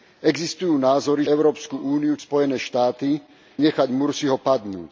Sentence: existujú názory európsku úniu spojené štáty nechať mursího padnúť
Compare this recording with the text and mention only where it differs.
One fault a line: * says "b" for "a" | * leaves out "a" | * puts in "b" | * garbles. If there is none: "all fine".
all fine